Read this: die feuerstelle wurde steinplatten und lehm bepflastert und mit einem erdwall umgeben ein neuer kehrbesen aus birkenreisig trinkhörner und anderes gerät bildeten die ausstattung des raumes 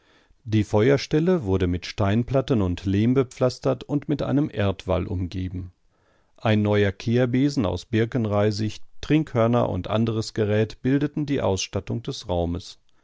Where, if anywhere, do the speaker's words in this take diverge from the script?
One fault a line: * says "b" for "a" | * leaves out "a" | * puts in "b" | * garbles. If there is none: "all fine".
* puts in "mit"